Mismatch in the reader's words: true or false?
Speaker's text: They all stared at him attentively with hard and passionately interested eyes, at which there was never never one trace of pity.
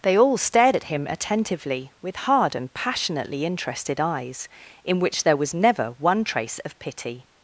true